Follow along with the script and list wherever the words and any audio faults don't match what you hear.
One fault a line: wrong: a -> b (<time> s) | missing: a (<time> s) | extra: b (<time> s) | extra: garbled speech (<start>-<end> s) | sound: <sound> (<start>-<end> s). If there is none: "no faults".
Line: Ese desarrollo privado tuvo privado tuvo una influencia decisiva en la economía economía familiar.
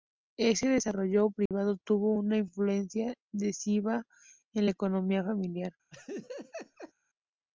sound: dropout (1.5-1.5 s)
missing: privado tuvo (2.1 s)
missing: economía (5.2 s)
sound: laugh (5.9-6.9 s)